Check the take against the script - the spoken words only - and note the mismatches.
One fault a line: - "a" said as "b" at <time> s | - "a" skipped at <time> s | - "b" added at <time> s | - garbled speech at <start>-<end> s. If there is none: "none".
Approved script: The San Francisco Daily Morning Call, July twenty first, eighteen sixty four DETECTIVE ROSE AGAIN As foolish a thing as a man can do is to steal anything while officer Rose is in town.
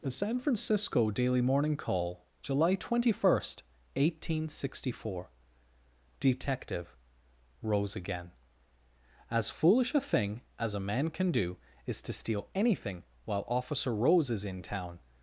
none